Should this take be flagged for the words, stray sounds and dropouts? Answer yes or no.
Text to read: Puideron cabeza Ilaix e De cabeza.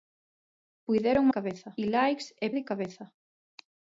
no